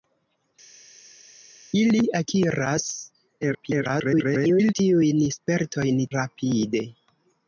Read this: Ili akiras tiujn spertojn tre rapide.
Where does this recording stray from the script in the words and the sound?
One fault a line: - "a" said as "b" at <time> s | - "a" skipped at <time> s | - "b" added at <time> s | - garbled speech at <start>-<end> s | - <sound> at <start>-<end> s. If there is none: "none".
- garbled speech at 3.4-4.7 s
- "tre" skipped at 6.1 s